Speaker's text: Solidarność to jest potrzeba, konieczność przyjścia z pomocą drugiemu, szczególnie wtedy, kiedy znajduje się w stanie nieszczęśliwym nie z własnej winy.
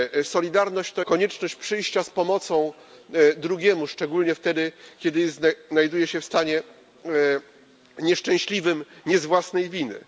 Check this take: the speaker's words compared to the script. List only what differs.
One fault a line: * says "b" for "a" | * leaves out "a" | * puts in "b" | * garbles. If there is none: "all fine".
* leaves out "jest potrzeba"